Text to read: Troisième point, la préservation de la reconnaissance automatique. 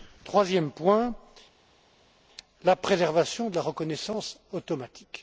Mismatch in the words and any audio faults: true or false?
false